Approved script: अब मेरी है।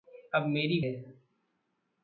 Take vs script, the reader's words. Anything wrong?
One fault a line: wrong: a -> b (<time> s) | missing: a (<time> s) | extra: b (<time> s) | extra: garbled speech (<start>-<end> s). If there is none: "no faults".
no faults